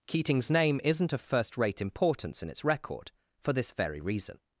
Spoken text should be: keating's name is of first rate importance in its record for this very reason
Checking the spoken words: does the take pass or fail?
fail